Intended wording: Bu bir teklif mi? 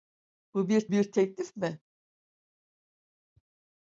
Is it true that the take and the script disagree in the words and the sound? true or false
true